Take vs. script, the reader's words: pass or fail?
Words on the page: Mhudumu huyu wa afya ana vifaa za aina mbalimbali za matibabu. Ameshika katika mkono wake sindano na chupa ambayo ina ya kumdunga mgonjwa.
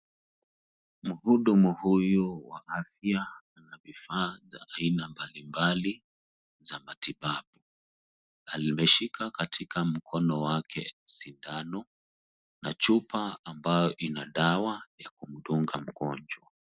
fail